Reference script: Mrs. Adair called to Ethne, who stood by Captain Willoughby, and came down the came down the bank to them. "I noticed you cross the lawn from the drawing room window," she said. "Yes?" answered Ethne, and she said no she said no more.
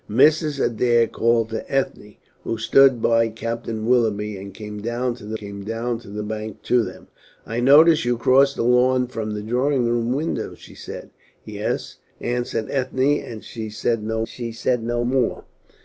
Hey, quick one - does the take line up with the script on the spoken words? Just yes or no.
yes